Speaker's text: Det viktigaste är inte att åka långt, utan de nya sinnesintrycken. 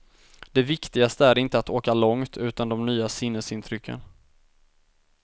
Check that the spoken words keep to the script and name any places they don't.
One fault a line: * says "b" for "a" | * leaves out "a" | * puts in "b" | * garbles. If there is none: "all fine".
all fine